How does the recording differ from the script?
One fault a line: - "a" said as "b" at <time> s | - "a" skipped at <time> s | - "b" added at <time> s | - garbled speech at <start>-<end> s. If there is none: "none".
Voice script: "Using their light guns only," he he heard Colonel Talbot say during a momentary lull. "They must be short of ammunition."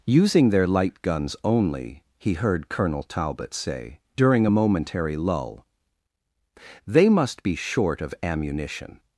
- "he" skipped at 2.3 s